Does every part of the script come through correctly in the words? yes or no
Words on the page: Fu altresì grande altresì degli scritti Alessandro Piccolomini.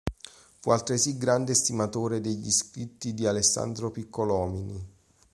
no